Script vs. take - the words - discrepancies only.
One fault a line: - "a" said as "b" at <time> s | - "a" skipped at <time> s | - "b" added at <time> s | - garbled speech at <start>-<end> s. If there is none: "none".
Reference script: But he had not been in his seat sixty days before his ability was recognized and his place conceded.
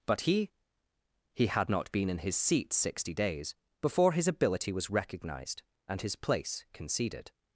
- "he" added at 1.3 s